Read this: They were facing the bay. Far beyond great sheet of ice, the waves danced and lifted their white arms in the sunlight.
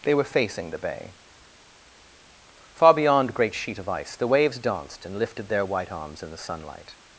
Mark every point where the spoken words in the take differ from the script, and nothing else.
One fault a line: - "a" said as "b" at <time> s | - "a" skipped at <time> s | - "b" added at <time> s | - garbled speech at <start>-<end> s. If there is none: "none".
none